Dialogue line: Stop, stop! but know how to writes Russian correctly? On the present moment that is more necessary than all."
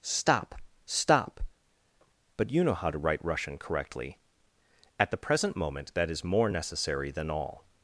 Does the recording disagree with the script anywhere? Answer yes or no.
yes